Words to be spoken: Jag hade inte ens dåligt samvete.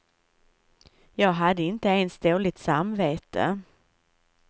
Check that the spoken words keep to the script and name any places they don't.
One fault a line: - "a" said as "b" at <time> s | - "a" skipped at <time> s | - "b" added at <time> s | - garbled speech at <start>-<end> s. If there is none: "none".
none